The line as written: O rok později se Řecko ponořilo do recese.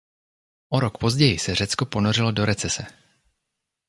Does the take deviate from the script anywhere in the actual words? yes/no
no